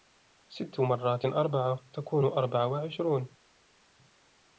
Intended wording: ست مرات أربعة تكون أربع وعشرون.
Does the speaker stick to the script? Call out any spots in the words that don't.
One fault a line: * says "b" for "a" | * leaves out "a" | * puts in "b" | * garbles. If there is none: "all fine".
all fine